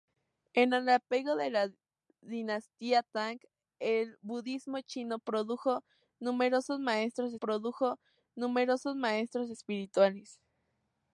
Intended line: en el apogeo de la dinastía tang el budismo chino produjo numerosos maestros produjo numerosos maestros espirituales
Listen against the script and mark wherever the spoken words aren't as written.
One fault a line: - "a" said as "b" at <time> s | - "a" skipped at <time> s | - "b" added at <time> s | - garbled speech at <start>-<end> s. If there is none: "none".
none